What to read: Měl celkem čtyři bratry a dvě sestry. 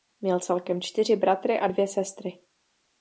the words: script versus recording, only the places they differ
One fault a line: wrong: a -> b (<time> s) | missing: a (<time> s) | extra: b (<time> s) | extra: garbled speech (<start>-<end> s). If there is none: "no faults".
no faults